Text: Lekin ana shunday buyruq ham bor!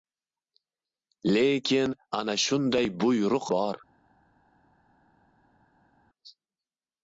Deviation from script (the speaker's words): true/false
true